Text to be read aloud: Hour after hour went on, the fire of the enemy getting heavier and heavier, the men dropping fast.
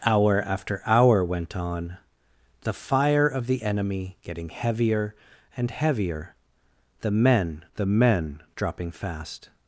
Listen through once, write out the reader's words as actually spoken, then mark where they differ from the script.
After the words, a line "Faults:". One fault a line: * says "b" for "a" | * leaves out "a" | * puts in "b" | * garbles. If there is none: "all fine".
Hour after hour went on, the fire of the enemy getting heavier and heavier, the men the men dropping fast.
Faults:
* puts in "the men"